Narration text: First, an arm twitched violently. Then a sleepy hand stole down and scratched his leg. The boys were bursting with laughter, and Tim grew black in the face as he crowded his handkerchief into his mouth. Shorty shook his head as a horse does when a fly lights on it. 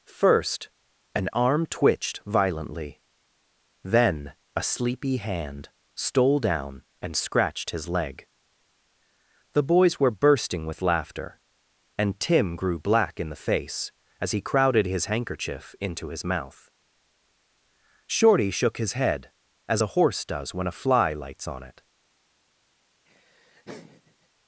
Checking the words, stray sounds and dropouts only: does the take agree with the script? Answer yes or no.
no